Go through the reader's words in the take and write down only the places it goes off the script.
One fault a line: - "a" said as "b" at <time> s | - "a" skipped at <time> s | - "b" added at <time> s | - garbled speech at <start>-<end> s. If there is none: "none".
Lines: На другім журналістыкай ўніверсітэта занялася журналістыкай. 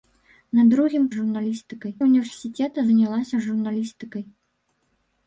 none